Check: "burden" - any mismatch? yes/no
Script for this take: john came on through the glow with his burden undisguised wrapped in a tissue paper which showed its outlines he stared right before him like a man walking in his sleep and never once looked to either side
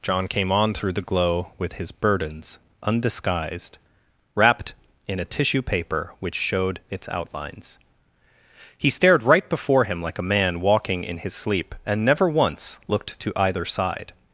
yes